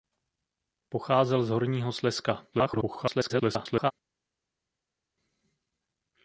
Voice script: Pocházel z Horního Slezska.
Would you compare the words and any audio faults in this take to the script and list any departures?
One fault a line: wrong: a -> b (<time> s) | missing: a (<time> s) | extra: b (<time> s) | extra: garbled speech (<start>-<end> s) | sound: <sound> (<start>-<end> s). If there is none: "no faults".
extra: garbled speech (2.5-3.9 s)